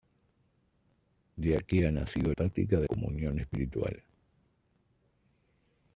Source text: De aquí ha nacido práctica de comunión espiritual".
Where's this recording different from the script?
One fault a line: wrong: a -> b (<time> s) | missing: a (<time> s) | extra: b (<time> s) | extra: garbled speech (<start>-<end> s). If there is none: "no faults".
no faults